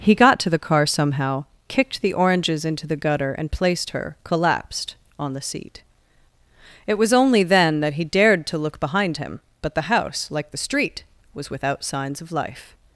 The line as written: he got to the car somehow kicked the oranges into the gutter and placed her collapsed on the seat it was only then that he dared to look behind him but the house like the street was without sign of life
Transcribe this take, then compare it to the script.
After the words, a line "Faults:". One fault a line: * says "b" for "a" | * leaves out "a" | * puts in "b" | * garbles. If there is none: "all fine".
he got to the car somehow kicked the oranges into the gutter and placed her collapsed on the seat it was only then that he dared to look behind him but the house like the street was without signs of life
Faults:
* says "signs" for "sign"